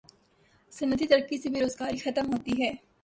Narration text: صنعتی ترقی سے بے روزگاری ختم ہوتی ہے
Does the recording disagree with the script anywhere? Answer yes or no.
no